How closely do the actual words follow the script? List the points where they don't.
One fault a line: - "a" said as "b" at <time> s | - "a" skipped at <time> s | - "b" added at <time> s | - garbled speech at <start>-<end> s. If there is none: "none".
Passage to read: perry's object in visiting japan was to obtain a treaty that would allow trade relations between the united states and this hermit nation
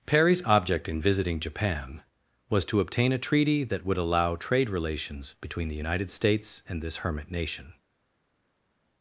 none